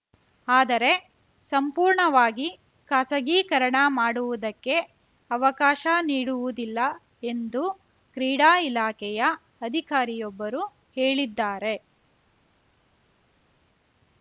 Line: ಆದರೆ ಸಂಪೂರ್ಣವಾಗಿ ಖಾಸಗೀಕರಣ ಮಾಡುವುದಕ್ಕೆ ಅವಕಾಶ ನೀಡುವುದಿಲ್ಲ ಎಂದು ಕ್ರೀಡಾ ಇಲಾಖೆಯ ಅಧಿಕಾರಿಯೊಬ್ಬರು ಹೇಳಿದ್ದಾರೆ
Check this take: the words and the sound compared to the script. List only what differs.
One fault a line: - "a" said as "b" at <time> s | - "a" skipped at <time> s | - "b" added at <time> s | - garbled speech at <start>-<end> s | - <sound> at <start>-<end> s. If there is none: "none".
none